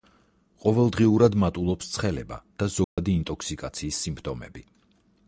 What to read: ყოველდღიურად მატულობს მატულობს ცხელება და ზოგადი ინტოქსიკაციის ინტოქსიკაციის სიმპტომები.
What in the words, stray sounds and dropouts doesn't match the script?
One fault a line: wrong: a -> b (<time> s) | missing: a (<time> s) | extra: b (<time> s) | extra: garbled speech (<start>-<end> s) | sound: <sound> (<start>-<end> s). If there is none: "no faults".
missing: მატულობს (1.9 s)
sound: dropout (2.8-3.0 s)
missing: ინტოქსიკაციის (4.0 s)